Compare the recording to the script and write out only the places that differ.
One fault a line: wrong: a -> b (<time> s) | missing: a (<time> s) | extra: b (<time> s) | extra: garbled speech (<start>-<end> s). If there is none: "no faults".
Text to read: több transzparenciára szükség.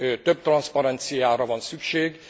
extra: van (1.5 s)